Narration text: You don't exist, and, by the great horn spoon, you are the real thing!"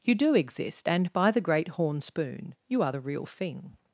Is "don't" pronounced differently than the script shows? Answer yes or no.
yes